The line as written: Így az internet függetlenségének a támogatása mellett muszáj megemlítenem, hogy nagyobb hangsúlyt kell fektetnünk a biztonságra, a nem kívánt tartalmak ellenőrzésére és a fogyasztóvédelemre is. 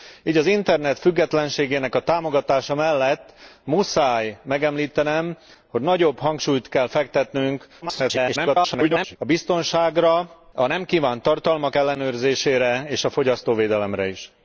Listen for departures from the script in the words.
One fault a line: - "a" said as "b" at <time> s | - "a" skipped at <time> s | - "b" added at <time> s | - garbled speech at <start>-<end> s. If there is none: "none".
- garbled speech at 7.8-9.2 s